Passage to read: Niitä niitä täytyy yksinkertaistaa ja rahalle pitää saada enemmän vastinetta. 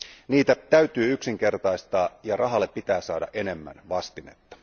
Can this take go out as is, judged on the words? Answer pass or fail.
fail